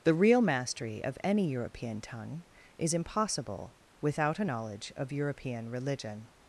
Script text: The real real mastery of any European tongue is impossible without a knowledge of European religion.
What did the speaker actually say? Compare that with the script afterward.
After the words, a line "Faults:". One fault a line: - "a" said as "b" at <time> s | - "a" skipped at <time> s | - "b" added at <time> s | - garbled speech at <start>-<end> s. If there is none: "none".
The real mastery of any European tongue is impossible without a knowledge of European religion.
Faults:
- "real" skipped at 0.4 s